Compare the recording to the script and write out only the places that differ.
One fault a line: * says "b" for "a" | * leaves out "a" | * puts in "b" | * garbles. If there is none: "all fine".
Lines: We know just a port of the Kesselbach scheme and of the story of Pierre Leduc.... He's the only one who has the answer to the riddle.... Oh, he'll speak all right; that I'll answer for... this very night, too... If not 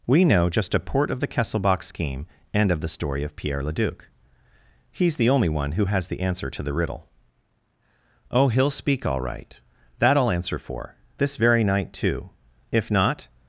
all fine